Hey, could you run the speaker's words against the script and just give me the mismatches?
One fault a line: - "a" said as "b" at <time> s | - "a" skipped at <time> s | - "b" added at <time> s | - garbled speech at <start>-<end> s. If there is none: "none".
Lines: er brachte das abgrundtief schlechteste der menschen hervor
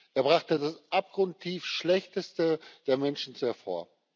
none